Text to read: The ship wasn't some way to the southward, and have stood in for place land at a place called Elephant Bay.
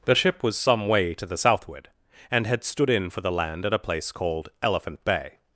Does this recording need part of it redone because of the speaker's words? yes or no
yes